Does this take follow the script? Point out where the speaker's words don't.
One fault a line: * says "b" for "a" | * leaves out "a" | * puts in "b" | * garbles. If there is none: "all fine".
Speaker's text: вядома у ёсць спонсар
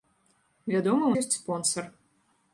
all fine